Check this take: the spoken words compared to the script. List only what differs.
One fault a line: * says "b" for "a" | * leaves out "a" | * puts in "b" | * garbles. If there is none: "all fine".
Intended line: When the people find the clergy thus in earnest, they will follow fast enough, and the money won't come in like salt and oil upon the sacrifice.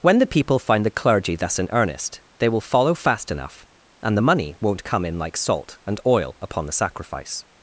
all fine